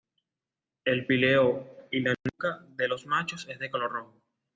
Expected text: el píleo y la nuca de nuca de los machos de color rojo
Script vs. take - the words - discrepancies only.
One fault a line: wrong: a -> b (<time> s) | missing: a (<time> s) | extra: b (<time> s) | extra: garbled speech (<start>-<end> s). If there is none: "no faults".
missing: nuca de (2.9 s)
extra: es (3.5 s)